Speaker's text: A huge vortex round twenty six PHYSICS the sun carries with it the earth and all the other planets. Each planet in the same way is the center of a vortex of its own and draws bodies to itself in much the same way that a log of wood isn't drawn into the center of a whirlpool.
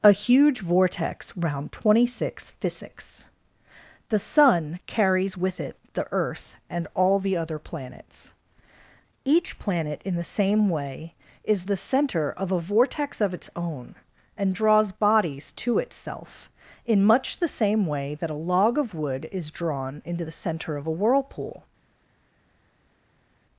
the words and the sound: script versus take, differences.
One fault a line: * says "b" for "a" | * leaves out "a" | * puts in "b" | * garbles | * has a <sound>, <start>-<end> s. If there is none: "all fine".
* says "is" for "isn't"